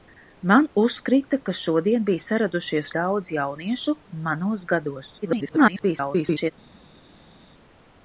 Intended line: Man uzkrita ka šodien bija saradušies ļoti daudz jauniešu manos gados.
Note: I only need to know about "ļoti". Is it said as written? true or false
false